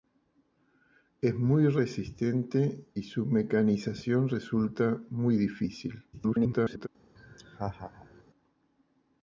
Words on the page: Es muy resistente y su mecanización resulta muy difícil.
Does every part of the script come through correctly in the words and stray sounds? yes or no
no